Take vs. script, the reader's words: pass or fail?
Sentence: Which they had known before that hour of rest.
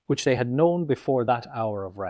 pass